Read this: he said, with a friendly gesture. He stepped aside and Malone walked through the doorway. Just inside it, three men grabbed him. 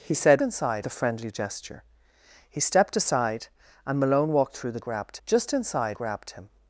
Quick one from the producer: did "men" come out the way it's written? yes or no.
no